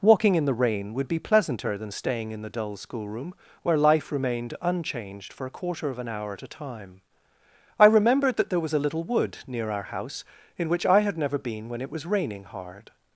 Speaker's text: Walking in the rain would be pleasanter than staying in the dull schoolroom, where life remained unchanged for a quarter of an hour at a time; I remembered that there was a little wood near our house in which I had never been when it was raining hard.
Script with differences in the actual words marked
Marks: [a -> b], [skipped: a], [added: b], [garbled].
Walking in the rain would be pleasanter than staying in the dull schoolroom, where life remained unchanged for a quarter of an hour at a time; I remembered that there was a little wood near our house in which I had never been when it was raining hard.